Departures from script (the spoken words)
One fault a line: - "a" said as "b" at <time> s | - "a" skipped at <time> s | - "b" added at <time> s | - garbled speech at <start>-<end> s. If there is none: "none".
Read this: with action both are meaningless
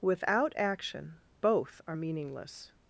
- "with" said as "without" at 0.0 s